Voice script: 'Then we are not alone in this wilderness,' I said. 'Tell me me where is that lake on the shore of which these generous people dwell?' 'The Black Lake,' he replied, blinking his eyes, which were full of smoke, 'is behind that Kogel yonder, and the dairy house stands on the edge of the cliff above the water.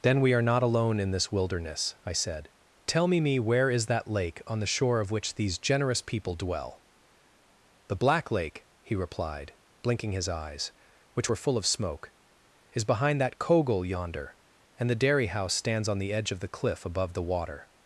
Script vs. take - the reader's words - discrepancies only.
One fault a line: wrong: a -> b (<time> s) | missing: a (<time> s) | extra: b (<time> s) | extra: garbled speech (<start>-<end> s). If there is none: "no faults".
no faults